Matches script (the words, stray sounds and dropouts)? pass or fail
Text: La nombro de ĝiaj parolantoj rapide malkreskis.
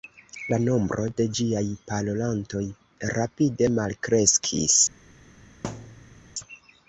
fail